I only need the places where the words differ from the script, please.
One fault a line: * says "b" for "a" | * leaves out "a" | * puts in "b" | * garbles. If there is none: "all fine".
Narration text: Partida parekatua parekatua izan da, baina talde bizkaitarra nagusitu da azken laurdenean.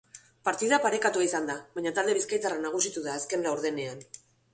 * leaves out "parekatua"